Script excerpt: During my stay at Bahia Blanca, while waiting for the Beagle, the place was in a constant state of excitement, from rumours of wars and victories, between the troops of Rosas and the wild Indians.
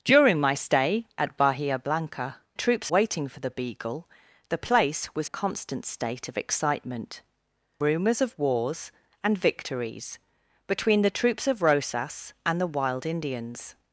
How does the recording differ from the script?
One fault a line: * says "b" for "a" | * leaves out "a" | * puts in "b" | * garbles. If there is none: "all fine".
* says "troops" for "while"
* leaves out "in"
* leaves out "from"